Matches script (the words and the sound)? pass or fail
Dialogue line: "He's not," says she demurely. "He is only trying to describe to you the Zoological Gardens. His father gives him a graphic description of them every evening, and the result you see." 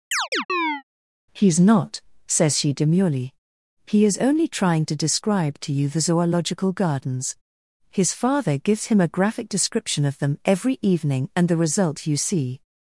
fail